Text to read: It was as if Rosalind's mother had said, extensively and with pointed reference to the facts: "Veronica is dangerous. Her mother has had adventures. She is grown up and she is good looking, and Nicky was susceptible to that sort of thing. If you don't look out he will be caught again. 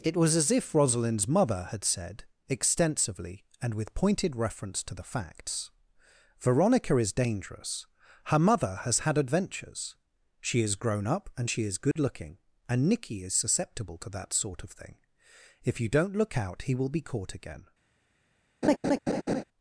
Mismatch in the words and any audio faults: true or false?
true